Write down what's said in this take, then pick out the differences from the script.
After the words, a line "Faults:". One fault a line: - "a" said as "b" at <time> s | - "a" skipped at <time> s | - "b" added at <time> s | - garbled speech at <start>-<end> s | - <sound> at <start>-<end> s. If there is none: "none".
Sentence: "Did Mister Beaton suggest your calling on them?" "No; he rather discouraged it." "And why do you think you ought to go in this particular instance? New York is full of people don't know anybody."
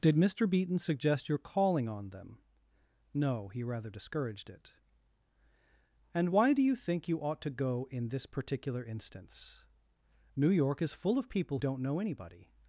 "Did Mister Beaton suggest your calling on them?" "No; he rather discouraged it." "And why do you think you ought to go in this particular instance? New York is full of people don't know anybody."
Faults:
none